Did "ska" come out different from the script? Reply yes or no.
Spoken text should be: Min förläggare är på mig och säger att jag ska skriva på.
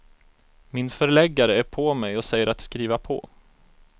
yes